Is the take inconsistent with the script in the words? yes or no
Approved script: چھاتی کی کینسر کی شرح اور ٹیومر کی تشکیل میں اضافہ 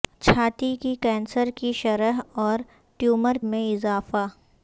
yes